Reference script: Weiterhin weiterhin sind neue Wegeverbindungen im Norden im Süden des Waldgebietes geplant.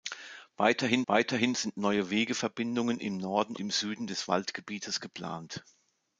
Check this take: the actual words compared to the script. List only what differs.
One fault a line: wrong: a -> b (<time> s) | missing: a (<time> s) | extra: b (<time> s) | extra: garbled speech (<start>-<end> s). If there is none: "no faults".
no faults